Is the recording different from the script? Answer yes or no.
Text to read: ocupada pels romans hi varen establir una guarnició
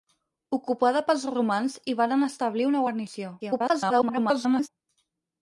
yes